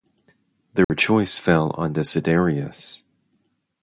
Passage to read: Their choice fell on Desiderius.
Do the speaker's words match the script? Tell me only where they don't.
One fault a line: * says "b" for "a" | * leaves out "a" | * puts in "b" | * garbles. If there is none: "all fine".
all fine